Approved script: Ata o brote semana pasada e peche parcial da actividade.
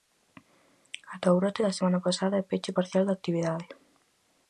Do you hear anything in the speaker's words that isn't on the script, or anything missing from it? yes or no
yes